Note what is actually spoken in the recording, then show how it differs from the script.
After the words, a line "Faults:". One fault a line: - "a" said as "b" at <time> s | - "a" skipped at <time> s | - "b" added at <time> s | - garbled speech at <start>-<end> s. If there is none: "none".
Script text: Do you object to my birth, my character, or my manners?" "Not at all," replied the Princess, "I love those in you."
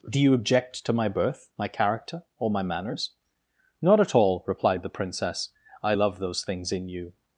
Do you object to my birth, my character, or my manners?" "Not at all," replied the Princess, "I love those things in you."
Faults:
- "things" added at 6.4 s